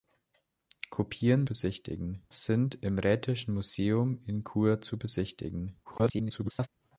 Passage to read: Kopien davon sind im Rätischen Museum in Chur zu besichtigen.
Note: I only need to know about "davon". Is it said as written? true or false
false